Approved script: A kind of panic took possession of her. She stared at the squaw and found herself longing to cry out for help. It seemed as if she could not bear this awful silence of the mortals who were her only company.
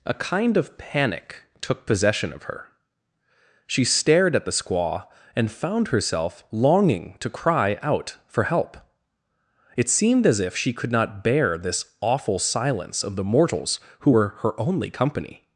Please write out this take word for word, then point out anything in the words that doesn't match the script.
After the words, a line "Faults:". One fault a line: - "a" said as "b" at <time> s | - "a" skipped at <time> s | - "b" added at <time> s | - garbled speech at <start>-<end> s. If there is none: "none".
A kind of panic took possession of her. She stared at the squaw and found herself longing to cry out for help. It seemed as if she could not bear this awful silence of the mortals who were her only company.
Faults:
none